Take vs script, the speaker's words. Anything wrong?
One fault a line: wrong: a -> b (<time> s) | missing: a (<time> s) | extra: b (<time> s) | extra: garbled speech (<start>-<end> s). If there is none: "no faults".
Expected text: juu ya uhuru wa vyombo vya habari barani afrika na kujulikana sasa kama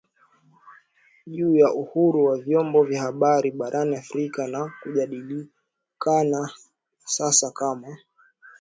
no faults